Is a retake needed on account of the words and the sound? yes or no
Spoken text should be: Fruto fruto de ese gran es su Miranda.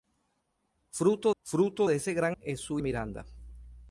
no